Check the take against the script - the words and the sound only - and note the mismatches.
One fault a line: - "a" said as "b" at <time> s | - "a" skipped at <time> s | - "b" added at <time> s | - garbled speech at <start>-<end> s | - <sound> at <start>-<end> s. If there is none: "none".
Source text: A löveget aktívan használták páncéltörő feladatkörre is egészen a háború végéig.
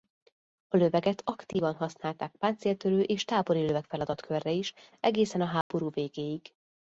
- "és tábori löveg" added at 3.0 s
- dropout at 5.6-5.7 s